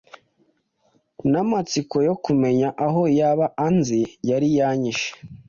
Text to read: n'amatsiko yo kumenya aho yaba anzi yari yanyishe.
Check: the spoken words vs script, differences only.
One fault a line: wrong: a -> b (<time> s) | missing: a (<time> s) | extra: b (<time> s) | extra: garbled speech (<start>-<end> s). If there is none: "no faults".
no faults